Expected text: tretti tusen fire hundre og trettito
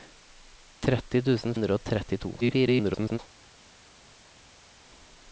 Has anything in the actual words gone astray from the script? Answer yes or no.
yes